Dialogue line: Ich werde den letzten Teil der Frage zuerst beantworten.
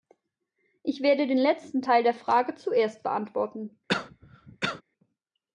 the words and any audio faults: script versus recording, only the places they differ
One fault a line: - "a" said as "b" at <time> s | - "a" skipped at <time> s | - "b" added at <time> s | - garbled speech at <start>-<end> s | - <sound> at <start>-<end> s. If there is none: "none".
- cough at 3.9-4.8 s